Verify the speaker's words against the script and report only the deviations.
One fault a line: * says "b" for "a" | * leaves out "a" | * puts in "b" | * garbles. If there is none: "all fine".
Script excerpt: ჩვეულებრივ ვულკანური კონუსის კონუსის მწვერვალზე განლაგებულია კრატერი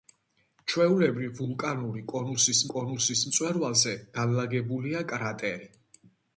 all fine